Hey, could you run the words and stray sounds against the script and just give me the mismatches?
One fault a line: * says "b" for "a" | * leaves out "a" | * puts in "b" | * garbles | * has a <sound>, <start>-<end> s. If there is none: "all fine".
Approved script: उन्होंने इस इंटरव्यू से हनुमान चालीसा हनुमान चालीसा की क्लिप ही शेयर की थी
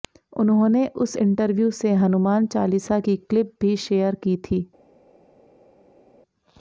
* says "उस" for "इस"
* leaves out "हनुमान चालीसा"
* says "भी" for "ही"